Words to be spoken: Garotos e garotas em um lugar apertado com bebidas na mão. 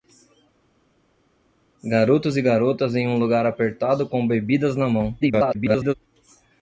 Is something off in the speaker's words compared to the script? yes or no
yes